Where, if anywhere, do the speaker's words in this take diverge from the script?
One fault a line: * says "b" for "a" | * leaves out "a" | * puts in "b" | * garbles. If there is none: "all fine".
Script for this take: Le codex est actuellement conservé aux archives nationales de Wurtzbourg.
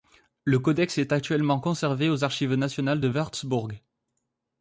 all fine